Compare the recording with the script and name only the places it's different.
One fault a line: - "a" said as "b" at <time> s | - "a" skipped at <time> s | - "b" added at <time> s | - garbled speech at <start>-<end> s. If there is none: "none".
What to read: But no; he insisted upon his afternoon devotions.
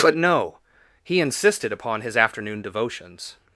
none